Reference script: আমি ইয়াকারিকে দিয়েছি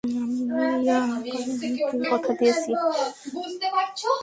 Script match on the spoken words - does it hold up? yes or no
no